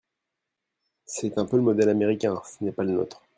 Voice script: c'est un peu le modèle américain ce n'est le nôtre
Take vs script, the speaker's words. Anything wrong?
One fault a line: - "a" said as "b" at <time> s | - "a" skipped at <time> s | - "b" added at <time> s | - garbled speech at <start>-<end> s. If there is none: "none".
- "pas" added at 2.7 s